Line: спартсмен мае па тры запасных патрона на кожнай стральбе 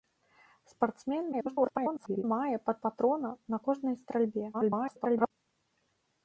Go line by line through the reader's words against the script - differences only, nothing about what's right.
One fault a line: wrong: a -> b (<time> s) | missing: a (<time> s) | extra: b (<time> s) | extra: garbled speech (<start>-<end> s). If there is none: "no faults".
extra: garbled speech (1.3-2.2 s)
missing: тры запасных (2.7 s)
extra: garbled speech (4.5-5.3 s)